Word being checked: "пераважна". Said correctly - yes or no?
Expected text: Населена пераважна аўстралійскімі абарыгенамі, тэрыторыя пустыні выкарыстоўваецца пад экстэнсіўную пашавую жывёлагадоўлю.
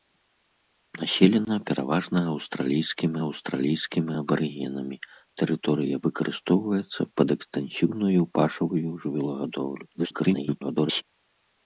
yes